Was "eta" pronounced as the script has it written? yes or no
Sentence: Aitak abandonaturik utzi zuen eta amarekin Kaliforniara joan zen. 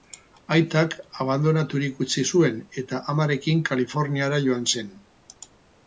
yes